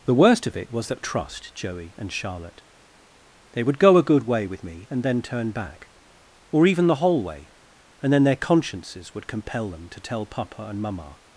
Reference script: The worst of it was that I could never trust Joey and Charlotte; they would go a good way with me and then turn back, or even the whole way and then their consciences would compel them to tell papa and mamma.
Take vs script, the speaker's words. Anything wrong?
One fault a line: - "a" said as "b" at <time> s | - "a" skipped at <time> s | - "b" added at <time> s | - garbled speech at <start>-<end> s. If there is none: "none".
- "I could never" skipped at 1.0 s